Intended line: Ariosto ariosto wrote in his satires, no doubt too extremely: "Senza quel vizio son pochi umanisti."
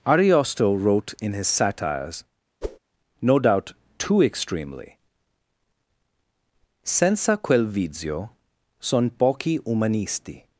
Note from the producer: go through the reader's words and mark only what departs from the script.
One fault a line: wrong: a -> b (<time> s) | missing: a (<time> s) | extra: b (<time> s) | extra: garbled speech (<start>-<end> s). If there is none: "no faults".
missing: ariosto (0.8 s)